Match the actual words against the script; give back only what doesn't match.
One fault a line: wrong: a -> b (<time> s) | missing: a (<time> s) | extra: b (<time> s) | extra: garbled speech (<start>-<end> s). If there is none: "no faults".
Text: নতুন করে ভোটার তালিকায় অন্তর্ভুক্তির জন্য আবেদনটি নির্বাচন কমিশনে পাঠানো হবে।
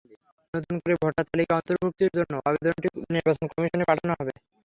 no faults